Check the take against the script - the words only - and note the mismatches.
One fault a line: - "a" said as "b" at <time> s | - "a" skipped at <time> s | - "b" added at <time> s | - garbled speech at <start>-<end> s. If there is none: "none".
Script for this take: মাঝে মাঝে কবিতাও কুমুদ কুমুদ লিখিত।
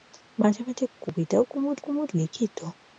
none